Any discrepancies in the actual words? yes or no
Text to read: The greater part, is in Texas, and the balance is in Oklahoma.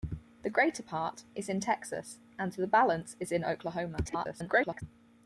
yes